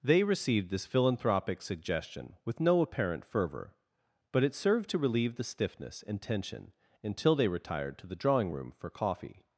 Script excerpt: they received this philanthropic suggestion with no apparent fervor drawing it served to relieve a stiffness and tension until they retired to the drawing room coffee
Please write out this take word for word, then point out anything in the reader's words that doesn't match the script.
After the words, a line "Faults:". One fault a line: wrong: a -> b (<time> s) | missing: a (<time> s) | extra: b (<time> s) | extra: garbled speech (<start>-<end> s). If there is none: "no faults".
they received this philanthropic suggestion with no apparent fervor but it served to relieve the stiffness and tension until they retired to the drawing room for coffee
Faults:
wrong: drawing -> but (4.3 s)
wrong: a -> the (5.3 s)
extra: for (8.7 s)